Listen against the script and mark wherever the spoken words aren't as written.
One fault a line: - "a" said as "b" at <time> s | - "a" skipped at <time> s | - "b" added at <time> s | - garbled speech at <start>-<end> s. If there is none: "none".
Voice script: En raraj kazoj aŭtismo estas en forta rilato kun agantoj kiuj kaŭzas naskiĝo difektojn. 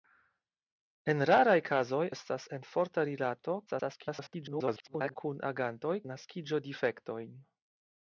- "aŭtismo" skipped at 2.0 s
- garbled speech at 3.7-5.1 s
- "kiuj kaŭzas" skipped at 6.0 s